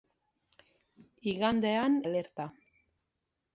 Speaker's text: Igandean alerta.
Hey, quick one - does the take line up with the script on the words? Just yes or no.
yes